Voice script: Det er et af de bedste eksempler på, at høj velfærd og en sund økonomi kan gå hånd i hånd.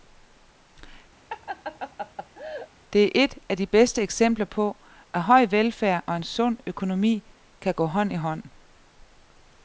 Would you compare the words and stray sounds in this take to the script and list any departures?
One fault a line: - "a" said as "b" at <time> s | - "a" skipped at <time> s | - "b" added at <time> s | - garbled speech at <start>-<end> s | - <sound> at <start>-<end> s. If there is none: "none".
- laugh at 1.3-2.7 s